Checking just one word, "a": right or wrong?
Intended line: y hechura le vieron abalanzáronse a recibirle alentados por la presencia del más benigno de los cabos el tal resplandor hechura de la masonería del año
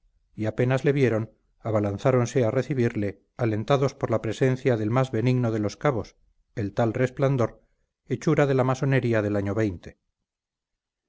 right